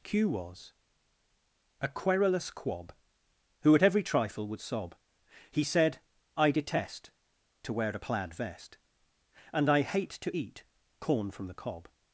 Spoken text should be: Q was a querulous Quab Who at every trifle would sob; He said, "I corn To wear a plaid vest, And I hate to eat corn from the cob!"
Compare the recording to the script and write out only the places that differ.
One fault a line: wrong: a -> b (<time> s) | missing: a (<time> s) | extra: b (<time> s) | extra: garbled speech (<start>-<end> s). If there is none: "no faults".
wrong: corn -> detest (6.5 s)